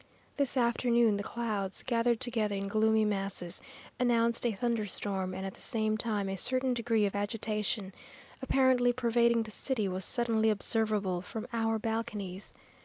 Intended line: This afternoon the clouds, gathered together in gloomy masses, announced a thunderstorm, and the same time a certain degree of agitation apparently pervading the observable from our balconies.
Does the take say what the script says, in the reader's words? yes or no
no